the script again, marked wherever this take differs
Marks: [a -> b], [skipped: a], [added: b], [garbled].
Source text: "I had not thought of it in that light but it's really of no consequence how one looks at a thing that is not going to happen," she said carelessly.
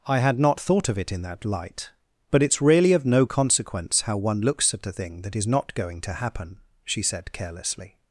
"I had not thought of it in that light but it's really of no consequence how one looks at a thing that is not going to happen," she said carelessly.